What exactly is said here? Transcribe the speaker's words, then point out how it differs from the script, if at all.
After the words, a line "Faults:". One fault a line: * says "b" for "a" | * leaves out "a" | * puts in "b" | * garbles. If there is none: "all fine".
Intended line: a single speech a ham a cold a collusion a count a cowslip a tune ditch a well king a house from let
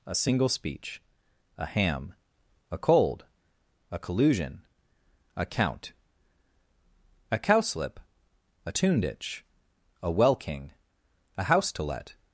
a single speech a ham a cold a collusion a count a cowslip a tune ditch a well king a house to let
Faults:
* says "to" for "from"